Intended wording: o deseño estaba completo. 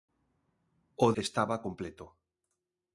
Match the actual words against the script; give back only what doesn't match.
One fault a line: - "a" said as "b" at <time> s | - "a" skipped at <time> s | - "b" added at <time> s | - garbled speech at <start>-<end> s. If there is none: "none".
- "deseño" skipped at 1.1 s